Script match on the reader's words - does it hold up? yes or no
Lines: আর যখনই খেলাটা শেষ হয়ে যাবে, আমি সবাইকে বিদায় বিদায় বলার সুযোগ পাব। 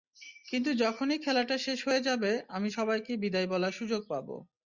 no